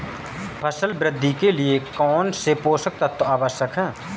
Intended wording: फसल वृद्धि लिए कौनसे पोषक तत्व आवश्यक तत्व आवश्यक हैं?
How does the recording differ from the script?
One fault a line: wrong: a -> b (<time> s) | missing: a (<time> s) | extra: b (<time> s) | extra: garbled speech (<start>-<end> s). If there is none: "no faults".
extra: के (1.3 s)
missing: तत्व आवश्यक (3.8 s)